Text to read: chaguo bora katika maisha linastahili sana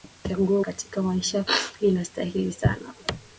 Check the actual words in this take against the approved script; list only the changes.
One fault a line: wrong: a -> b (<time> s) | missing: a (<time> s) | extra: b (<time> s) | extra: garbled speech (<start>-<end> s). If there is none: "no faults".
missing: bora (0.6 s)